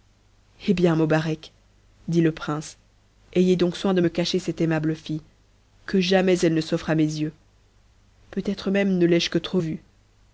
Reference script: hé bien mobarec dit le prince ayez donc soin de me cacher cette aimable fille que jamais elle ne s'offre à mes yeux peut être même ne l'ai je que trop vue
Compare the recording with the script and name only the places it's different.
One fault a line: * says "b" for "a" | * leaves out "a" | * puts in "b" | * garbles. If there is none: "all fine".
all fine